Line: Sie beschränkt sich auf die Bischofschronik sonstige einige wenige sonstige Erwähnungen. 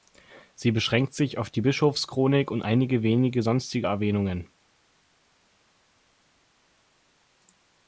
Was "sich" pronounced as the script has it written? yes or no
yes